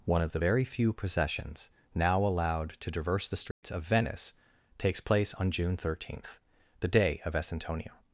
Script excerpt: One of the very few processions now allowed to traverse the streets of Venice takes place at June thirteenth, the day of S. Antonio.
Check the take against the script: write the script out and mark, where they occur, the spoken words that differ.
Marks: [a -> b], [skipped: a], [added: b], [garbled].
One of the very few processions now allowed to traverse the streets of Venice takes place [at -> on] June thirteenth, the day of S. Antonio.